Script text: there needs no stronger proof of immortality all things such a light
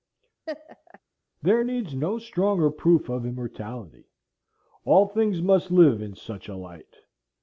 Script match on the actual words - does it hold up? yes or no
no